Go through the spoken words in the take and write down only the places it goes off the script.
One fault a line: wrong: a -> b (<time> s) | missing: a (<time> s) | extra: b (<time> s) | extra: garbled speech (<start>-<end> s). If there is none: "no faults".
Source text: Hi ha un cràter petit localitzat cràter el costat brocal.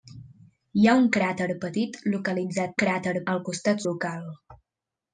no faults